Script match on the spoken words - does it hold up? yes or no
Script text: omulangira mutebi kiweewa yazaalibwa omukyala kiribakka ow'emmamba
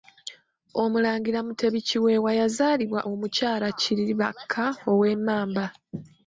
yes